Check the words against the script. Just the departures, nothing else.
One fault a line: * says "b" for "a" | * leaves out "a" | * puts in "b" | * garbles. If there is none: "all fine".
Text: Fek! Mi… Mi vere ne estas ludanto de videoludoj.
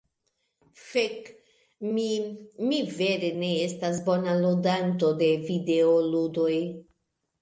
* puts in "bona"